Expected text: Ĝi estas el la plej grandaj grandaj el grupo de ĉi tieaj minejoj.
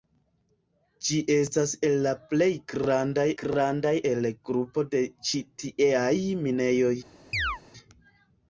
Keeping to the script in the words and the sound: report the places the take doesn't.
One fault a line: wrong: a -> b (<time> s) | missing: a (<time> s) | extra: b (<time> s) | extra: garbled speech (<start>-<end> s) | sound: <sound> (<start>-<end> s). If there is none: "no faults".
sound: chirp (7.3-7.6 s)